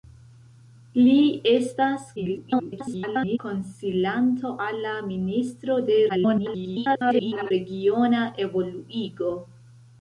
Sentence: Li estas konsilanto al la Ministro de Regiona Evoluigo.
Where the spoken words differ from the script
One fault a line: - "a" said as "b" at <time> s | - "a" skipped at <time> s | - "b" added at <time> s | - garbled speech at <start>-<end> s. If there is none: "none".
- garbled speech at 2.2-3.4 s
- garbled speech at 6.1-7.5 s